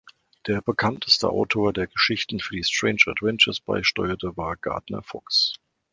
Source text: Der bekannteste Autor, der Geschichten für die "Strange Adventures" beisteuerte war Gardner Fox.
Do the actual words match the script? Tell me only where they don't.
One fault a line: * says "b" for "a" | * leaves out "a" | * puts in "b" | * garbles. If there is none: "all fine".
all fine